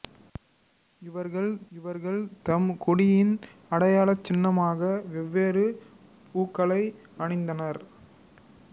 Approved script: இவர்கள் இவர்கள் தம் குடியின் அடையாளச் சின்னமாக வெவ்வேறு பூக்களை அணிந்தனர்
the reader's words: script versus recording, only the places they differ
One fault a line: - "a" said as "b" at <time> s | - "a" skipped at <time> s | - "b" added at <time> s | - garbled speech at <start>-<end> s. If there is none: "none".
none